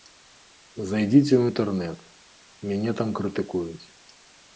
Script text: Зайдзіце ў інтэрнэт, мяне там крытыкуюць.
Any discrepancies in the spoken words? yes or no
no